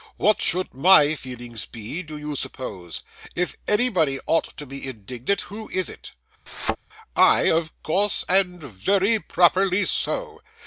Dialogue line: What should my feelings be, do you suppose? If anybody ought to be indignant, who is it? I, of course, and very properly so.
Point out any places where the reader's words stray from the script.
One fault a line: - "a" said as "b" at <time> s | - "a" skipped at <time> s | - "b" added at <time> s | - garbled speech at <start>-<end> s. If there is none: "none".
none